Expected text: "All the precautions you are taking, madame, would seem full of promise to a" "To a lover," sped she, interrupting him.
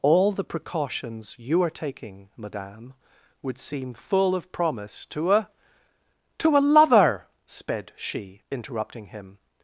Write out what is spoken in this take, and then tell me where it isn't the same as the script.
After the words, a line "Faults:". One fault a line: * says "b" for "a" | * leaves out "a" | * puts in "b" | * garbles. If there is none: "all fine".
"All the precautions you are taking, madame, would seem full of promise to a" "To a lover," sped she, interrupting him.
Faults:
all fine